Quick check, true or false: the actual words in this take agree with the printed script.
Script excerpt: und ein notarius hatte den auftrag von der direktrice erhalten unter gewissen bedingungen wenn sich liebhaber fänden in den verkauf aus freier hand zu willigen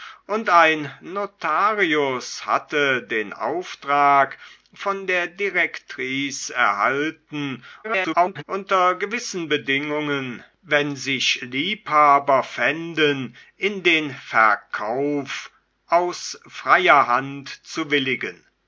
false